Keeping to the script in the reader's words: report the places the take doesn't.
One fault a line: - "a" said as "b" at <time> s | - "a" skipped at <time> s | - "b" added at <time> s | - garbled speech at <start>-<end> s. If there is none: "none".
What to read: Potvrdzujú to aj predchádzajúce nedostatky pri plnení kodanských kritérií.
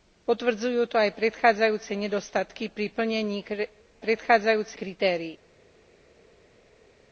- "kodanských" said as "predchádzajúce" at 4.0 s